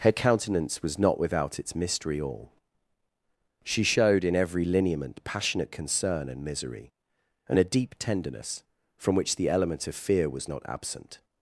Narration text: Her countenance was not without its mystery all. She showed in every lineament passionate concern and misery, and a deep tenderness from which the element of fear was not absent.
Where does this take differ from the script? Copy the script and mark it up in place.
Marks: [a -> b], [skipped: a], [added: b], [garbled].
Her countenance was not without its mystery all. She showed in every lineament passionate concern and misery, and a deep tenderness from which the element of fear was not absent.